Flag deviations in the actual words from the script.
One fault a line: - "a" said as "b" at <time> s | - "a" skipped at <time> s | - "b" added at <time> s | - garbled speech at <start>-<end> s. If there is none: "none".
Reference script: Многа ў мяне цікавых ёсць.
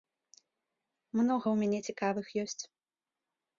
none